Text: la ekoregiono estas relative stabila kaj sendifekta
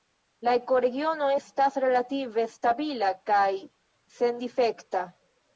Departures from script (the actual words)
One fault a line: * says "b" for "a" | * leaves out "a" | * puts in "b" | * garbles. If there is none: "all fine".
all fine